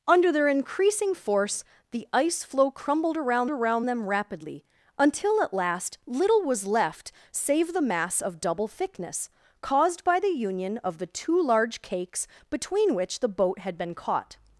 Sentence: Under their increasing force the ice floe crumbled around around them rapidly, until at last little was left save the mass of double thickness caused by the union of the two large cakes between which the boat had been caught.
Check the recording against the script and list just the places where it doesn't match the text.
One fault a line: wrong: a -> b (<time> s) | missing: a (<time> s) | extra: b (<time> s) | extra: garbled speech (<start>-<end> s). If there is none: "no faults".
no faults